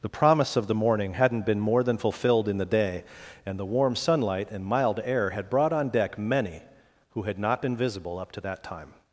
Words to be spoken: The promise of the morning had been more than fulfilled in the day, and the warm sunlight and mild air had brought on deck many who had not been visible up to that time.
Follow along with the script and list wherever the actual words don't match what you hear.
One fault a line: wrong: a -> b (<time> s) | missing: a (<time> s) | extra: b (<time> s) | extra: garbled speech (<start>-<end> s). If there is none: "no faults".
wrong: had -> hadn't (1.1 s)